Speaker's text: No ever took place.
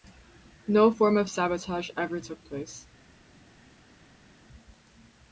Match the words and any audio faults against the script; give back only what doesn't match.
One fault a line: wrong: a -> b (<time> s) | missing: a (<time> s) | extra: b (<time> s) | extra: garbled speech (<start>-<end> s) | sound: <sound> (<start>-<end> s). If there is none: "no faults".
extra: form of sabotage (0.9 s)